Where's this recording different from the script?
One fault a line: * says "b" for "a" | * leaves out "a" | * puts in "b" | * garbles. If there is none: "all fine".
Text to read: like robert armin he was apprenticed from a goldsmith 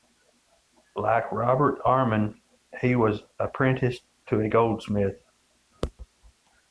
* says "to" for "from"